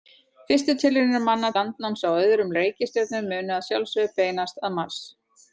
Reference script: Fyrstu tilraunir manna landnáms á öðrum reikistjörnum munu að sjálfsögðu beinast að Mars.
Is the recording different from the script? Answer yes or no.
no